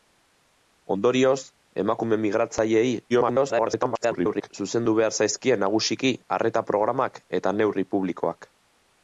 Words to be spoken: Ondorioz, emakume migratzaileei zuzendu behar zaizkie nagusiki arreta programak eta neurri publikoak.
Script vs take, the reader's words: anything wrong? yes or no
yes